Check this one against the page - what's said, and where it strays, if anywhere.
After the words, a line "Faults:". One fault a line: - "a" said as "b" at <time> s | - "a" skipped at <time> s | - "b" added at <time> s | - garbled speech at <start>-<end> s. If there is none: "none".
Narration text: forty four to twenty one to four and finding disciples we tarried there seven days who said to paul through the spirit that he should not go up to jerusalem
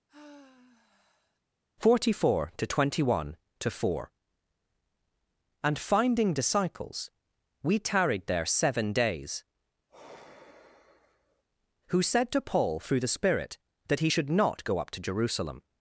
forty four to twenty one to four and finding disciples we tarried there seven days who said to paul through the spirit that he should not go up to jerusalem
Faults:
none